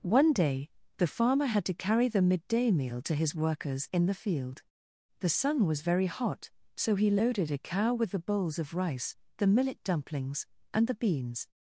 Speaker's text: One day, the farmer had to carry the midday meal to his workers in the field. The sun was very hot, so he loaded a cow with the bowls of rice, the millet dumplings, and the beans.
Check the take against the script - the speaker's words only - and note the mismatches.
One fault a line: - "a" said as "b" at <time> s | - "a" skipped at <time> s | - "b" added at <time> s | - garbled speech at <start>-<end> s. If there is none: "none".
none